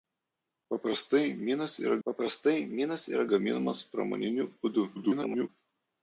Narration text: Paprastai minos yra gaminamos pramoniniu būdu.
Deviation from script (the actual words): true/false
true